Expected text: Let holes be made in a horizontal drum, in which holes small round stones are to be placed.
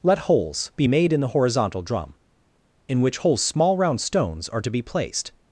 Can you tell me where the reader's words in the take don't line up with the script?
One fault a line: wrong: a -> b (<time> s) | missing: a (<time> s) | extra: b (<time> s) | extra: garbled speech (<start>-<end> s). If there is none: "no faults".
wrong: a -> the (1.2 s)